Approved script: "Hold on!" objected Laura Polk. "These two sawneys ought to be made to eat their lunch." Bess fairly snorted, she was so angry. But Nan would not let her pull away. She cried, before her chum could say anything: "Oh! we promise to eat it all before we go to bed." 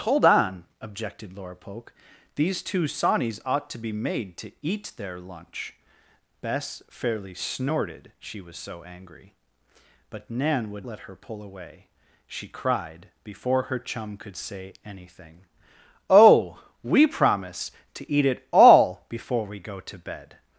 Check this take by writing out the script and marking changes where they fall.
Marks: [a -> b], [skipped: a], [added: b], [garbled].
"Hold on!" objected Laura Polk. "These two sawneys ought to be made to eat their lunch." Bess fairly snorted, she was so angry. But Nan would [skipped: not] let her pull away. She cried, before her chum could say anything: "Oh! we promise to eat it all before we go to bed."